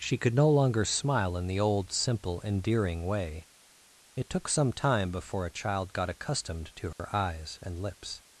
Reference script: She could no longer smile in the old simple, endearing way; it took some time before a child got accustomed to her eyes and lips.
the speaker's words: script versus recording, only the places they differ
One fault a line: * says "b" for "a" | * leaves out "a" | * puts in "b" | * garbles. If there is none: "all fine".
all fine